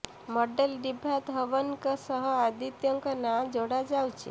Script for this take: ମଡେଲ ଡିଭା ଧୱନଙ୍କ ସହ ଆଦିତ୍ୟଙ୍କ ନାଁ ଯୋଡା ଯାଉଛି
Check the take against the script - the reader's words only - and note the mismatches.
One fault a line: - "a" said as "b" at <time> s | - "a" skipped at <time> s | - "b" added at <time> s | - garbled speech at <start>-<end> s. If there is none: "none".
none